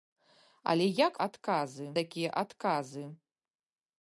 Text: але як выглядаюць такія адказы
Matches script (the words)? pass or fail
fail